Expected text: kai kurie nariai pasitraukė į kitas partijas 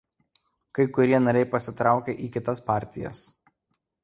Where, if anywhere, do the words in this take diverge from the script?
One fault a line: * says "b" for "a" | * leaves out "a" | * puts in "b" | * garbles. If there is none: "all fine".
all fine